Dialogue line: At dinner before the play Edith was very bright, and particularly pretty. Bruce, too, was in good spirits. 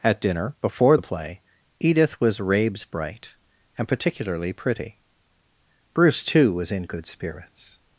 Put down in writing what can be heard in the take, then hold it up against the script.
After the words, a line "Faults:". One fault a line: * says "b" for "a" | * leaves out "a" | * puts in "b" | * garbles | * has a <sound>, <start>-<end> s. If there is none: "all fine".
At dinner before the play Edith was rabes bright, and particularly pretty. Bruce, too, was in good spirits.
Faults:
* says "rabes" for "very"